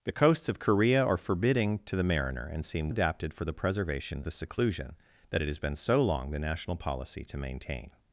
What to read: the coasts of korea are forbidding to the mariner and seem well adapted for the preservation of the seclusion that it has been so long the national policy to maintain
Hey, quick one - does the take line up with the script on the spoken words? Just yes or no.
no